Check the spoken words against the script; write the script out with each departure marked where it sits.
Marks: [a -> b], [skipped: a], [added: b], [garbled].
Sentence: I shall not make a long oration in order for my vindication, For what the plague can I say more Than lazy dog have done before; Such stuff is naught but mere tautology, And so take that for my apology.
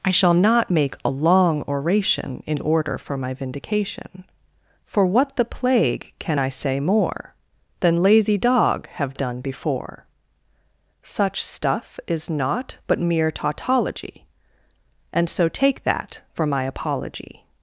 I shall not make a long oration in order for my vindication, For what the plague can I say more Than lazy dog have done before; Such stuff is naught but mere tautology, And so take that for my apology.